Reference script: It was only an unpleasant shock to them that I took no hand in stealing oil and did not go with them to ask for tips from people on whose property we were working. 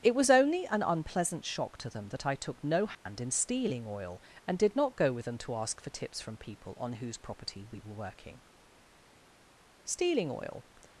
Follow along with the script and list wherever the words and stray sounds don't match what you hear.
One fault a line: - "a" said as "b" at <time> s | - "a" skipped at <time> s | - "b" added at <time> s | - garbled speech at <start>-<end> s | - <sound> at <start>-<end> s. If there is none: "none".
- dropout at 2.9-3.1 s
- "Stealing oil" added at 9.8 s